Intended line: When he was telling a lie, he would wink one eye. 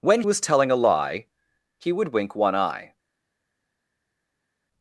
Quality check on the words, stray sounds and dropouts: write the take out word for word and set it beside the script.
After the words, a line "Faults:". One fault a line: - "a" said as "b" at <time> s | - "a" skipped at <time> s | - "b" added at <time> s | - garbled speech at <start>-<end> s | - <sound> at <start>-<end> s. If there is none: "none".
When was telling a lie, he would wink one eye.
Faults:
- "he" skipped at 0.2 s